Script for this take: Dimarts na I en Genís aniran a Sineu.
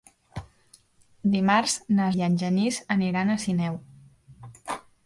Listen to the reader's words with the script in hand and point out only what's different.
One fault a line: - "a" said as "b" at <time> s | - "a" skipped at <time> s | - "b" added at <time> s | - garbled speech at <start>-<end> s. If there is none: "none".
none